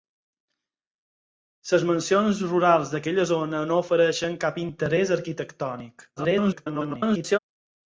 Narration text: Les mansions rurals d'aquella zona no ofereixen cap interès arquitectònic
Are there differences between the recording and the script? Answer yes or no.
yes